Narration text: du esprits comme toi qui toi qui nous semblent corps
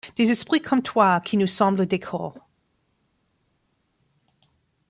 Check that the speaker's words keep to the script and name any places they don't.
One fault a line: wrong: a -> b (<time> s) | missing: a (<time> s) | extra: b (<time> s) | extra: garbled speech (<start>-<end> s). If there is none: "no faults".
wrong: du -> des (0.1 s)
missing: toi qui (1.4 s)
extra: des (1.9 s)